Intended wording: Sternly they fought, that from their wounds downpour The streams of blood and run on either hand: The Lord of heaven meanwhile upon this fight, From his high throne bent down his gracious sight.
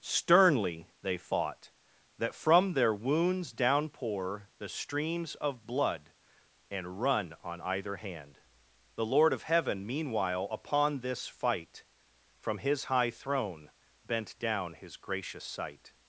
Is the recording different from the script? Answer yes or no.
no